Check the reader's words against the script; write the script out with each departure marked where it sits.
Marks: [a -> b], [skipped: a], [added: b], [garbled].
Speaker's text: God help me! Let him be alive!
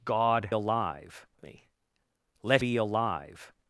God [help -> alive] me! Let [skipped: him] be alive!